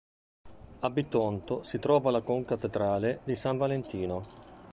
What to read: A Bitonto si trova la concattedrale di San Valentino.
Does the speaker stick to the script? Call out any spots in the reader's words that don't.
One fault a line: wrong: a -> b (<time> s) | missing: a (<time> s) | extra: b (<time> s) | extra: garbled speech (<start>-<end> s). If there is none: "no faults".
no faults